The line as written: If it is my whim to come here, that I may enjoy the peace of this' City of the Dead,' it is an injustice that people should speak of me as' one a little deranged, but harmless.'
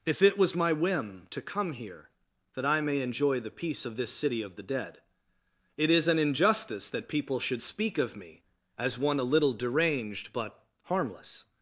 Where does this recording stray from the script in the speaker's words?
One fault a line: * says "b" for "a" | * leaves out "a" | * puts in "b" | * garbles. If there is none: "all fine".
* says "was" for "is"